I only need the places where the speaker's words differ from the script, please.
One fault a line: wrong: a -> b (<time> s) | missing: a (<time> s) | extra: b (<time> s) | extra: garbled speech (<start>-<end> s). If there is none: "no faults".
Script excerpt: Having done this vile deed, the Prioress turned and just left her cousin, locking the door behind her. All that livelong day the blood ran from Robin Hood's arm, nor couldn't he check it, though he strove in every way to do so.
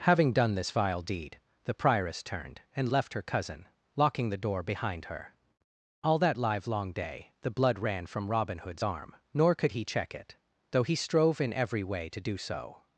missing: just (2.9 s)
wrong: couldn't -> could (9.6 s)